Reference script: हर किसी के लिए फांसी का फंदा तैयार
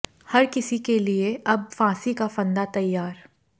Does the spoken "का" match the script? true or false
true